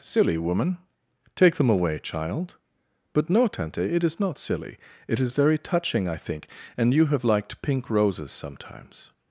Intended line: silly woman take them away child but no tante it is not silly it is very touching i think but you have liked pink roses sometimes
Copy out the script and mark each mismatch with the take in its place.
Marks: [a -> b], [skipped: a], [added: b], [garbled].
silly woman take them away child but no tante it is not silly it is very touching i think [but -> and] you have liked pink roses sometimes